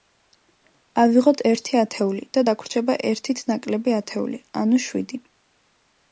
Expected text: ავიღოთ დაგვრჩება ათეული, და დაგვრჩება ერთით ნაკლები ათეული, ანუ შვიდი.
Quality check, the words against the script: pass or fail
fail